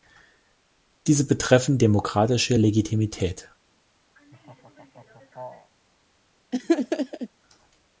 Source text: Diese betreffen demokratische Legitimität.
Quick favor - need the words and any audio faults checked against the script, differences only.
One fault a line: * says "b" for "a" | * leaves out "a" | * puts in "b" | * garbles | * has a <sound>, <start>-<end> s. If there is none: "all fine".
* has a laugh, 4.2-5.7 s
* has a laugh, 6.5-7.3 s